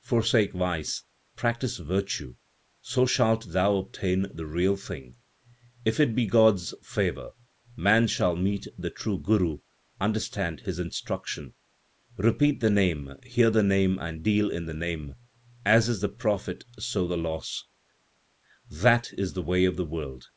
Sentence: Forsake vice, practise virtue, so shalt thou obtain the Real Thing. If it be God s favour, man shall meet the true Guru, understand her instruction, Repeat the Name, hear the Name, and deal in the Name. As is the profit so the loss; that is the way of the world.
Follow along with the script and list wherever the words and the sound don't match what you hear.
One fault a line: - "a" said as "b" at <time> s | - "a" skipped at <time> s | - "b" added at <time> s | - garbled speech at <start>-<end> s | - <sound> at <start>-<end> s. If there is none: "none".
- "her" said as "his" at 10.6 s